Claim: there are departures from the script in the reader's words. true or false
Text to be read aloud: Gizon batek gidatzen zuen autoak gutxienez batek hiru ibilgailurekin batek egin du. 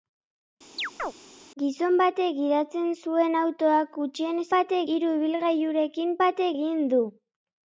false